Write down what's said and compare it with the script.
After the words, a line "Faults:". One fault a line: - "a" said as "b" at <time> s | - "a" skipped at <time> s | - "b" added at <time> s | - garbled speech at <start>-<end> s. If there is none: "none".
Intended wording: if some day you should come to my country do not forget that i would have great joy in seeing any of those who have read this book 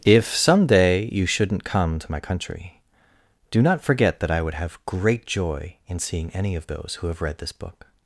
if some day you shouldn't come to my country do not forget that i would have great joy in seeing any of those who have read this book
Faults:
- "should" said as "shouldn't" at 1.3 s